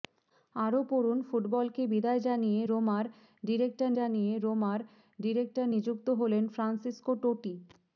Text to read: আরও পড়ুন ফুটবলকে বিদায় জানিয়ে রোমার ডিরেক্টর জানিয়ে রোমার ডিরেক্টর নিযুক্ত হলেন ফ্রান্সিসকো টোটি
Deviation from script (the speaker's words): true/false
false